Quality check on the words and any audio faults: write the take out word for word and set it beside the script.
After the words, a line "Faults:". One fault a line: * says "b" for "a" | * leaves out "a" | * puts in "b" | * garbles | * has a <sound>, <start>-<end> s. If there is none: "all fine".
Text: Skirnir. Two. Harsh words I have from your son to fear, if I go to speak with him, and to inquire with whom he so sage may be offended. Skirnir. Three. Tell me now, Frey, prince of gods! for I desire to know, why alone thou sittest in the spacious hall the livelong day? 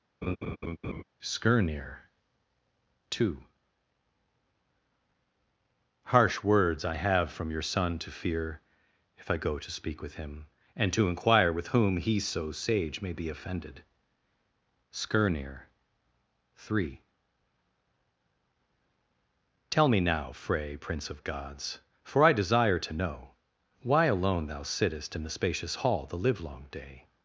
Skirnir. Two. Harsh words I have from your son to fear, if I go to speak with him, and to inquire with whom he so sage may be offended. Skirnir. Three. Tell me now, Frey, prince of gods! for I desire to know, why alone thou sittest in the spacious hall the livelong day?
Faults:
* has a laugh, 0.2-1.0 s